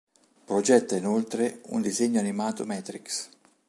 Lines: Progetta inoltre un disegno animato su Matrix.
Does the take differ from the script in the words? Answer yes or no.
yes